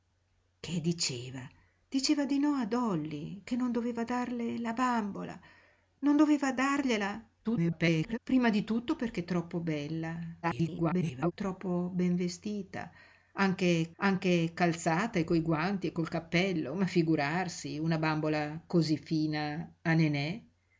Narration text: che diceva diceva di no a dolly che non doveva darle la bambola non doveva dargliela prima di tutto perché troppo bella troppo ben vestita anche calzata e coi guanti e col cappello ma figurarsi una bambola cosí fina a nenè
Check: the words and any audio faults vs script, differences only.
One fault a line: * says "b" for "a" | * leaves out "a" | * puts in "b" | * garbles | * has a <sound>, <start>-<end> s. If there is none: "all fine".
* garbles
* garbles
* puts in "anche"